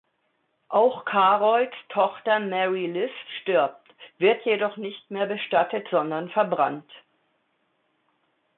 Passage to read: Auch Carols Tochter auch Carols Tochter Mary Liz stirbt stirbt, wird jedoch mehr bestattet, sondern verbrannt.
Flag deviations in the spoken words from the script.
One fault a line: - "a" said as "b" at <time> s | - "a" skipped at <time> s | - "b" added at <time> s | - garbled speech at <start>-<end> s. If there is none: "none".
- "auch Carols Tochter" skipped at 2.4 s
- "stirbt" skipped at 3.9 s
- "nicht" added at 4.8 s